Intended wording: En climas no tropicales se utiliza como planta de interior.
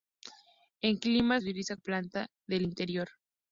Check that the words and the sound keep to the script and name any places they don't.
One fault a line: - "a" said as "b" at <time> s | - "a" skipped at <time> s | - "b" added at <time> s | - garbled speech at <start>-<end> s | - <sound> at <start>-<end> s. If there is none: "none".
- "no tropicales" skipped at 1.4 s
- "como" skipped at 1.8 s